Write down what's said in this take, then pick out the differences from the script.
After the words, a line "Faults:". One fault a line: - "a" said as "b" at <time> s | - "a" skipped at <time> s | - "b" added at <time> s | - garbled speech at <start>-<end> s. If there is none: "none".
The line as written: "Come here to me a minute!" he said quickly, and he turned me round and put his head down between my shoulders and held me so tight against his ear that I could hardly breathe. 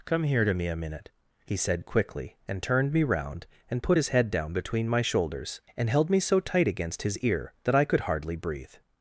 "Come here to me a minute!" he said quickly, and turned me round and put his head down between my shoulders and held me so tight against his ear that I could hardly breathe.
Faults:
- "he" skipped at 2.6 s